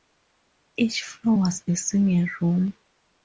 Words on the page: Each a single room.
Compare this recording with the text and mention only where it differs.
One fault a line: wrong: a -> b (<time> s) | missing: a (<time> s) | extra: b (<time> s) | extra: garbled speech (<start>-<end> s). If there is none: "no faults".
extra: floor was (1.0 s)